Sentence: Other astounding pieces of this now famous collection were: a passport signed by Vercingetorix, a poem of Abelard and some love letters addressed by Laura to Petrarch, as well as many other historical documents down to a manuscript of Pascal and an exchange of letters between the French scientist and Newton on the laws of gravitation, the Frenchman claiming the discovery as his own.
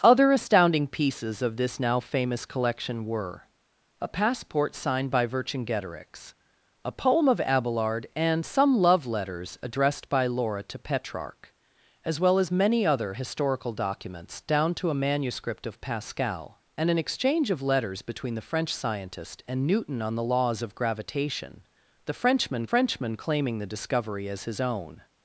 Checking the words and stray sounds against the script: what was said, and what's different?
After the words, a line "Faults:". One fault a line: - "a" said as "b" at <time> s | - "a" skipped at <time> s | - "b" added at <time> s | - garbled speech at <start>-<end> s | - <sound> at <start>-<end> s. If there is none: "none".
Other astounding pieces of this now famous collection were: a passport signed by Vercingetorix, a poem of Abelard and some love letters addressed by Laura to Petrarch, as well as many other historical documents down to a manuscript of Pascal and an exchange of letters between the French scientist and Newton on the laws of gravitation, the Frenchman Frenchman claiming the discovery as his own.
Faults:
- "Frenchman" added at 22.7 s